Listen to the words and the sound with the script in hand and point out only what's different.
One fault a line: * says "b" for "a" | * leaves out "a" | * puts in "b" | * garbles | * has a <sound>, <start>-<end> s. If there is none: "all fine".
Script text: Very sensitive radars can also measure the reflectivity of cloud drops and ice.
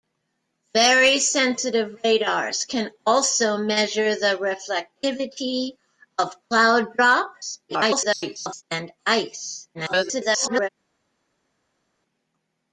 * garbles
* garbles